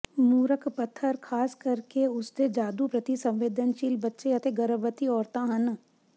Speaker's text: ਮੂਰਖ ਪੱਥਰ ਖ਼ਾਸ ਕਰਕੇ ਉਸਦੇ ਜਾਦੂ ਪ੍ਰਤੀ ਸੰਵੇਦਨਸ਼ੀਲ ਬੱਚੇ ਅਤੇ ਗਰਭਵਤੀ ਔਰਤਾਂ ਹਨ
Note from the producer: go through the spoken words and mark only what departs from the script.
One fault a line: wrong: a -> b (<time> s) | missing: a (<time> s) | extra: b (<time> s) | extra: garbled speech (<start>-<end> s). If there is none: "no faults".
no faults